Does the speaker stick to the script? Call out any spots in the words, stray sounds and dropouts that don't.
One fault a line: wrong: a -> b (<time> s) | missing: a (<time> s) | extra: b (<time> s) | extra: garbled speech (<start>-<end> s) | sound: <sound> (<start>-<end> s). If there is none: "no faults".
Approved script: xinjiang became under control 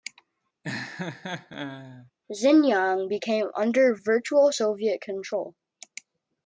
sound: laugh (0.6-2.1 s)
extra: virtual soviet (3.9 s)